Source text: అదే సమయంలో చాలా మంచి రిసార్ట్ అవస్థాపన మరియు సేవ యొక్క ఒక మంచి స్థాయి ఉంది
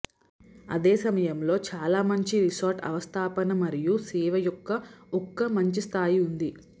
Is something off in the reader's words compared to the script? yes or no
no